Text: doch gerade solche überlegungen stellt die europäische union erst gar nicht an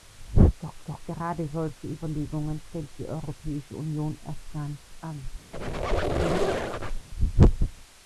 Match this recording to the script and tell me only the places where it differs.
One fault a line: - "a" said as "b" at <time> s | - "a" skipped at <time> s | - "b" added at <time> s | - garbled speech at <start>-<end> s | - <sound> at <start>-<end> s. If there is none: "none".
- "doch" added at 0.9 s
- squeak at 5.5-7.1 s